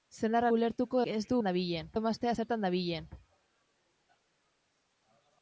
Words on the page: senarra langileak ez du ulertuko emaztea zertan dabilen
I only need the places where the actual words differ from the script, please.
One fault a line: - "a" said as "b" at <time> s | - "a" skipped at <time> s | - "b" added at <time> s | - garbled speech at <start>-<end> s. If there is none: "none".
- "langileak" said as "ulertuko" at 0.5 s
- "ulertuko" said as "dabilen" at 1.4 s